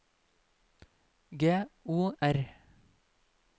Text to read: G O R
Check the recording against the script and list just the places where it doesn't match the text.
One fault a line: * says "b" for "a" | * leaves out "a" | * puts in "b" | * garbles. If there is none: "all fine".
all fine